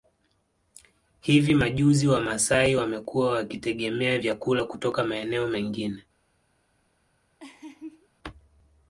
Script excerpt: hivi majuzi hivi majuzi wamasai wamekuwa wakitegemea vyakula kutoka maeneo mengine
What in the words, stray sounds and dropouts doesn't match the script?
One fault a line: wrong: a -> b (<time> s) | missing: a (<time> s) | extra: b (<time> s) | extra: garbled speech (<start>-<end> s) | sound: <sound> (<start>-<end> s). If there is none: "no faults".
missing: hivi majuzi (2.1 s)
sound: laugh (7.4-8.1 s)